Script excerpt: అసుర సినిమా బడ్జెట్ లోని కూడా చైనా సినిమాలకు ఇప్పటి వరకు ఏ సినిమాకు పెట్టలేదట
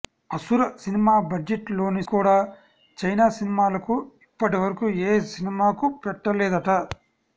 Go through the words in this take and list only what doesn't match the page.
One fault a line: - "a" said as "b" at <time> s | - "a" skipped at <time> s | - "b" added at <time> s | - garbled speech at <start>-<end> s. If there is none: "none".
none